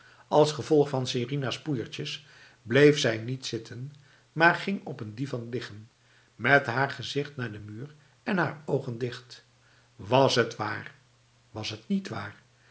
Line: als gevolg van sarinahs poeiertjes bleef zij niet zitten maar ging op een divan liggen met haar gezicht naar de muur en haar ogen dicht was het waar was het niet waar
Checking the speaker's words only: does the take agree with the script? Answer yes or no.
yes